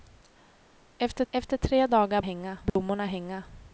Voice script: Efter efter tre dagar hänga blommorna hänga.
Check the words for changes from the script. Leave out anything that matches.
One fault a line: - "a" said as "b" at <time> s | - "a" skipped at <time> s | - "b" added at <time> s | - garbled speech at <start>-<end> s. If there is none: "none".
none